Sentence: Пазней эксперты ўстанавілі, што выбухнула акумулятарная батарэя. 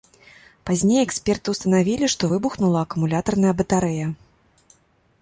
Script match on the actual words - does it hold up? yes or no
yes